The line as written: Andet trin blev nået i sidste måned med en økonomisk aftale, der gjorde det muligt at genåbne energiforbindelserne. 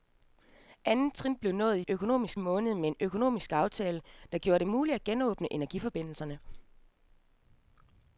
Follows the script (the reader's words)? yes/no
no